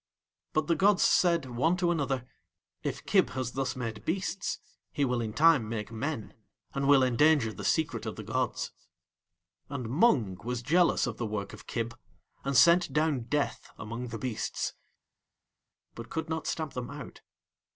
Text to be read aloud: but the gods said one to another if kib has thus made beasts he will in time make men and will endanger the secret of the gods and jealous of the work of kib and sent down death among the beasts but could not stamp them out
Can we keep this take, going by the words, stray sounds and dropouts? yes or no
no